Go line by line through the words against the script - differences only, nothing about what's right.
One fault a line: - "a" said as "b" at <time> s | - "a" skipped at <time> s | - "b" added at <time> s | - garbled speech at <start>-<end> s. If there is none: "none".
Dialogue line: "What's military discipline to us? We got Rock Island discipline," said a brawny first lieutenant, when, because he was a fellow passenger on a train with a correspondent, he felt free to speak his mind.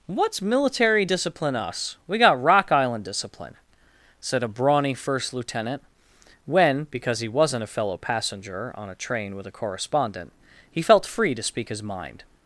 - "to" skipped at 1.5 s
- "was" said as "wasn't" at 7.3 s